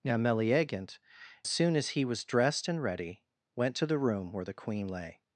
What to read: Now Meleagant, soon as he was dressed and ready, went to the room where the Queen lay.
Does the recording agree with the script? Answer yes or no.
yes